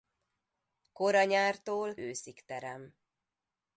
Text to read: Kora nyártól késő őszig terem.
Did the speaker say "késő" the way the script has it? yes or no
no